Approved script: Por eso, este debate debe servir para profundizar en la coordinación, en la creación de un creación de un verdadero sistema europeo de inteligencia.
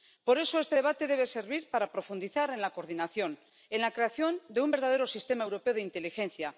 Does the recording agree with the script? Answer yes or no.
no